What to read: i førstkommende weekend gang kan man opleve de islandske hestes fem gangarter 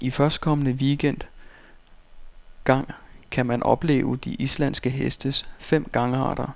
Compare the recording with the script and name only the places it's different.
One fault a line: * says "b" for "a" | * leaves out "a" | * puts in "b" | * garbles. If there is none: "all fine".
all fine